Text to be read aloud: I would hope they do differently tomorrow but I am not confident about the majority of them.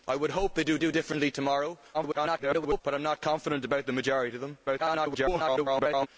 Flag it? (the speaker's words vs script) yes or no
yes